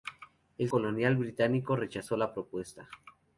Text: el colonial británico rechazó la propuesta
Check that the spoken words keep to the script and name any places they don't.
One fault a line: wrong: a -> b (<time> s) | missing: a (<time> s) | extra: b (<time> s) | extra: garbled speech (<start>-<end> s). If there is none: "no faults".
no faults